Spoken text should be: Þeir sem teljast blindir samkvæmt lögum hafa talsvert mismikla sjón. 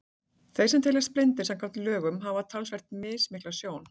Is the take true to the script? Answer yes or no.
yes